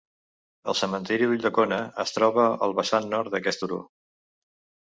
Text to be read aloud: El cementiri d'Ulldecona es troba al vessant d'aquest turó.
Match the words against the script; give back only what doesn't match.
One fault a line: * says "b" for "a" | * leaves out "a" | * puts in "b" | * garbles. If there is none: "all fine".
* puts in "nord"